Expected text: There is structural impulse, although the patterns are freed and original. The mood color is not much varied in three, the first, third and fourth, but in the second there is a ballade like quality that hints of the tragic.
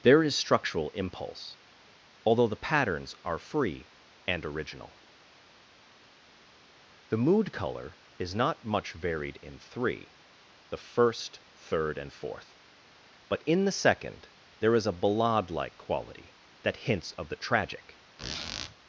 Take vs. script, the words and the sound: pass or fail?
fail